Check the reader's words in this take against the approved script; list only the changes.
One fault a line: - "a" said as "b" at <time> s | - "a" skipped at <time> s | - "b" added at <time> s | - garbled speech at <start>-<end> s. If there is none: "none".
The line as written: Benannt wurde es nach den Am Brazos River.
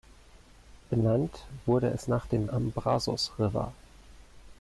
none